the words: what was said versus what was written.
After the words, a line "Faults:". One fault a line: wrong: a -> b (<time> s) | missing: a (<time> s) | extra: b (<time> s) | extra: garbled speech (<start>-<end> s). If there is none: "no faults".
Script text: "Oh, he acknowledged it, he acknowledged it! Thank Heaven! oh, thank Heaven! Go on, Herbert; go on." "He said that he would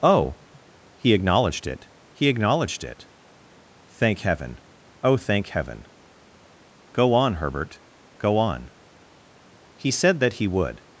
"Oh, he acknowledged it, he acknowledged it! Thank Heaven! oh, thank Heaven! Go on, Herbert; go on." "He said that he would
Faults:
no faults